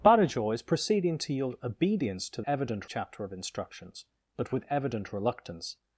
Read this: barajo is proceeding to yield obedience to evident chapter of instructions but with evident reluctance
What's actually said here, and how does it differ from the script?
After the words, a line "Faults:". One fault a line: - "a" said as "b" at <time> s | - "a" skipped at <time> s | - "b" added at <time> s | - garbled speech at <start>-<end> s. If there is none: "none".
barajo is proceeding to yield obedience to evident chapter of instructions but with evident reluctance
Faults:
none